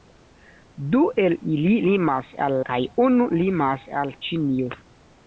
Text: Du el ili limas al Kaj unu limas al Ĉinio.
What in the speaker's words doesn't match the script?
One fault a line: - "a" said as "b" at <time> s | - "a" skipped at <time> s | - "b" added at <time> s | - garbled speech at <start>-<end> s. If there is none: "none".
none